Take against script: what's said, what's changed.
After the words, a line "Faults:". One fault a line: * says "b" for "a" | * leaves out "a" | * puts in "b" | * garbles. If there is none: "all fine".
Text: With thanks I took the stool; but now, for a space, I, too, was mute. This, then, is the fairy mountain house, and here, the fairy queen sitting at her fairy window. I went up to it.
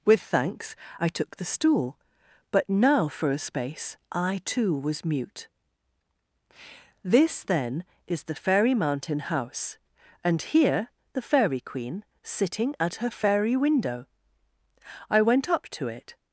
With thanks I took the stool; but now, for a space, I, too, was mute. This, then, is the fairy mountain house, and here, the fairy queen sitting at her fairy window. I went up to it.
Faults:
all fine